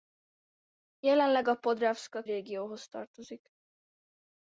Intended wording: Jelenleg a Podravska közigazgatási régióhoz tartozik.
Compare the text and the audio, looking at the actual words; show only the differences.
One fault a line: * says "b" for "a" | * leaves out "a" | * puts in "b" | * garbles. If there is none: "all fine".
* leaves out "közigazgatási"